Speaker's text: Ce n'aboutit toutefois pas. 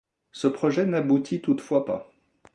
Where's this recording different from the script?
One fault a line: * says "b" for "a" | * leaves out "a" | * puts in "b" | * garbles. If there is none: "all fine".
* puts in "projet"